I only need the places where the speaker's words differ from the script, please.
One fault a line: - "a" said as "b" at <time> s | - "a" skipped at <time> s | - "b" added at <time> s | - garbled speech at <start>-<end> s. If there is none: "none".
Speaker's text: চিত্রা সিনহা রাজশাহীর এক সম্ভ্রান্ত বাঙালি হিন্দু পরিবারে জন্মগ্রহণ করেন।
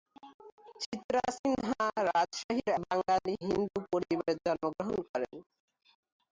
- "এক সম্ভ্রান্ত" skipped at 2.7 s